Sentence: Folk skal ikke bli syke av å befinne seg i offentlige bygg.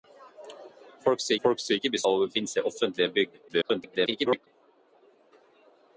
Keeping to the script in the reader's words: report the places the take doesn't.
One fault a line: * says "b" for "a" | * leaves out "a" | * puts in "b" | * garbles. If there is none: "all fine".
* puts in "folk skal"
* leaves out "syke"
* garbles